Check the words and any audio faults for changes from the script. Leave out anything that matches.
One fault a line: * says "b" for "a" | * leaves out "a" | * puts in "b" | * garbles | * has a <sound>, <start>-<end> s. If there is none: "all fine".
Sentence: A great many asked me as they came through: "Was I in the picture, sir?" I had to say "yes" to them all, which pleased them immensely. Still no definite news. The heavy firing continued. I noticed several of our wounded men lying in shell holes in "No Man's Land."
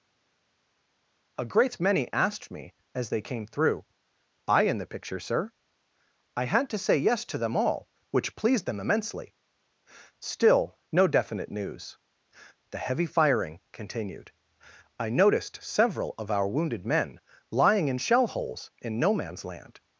* leaves out "Was"